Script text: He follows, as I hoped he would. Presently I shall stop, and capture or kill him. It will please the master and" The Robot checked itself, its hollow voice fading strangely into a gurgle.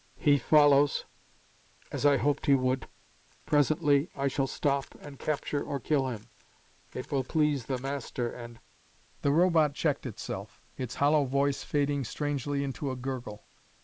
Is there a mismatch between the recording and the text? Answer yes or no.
no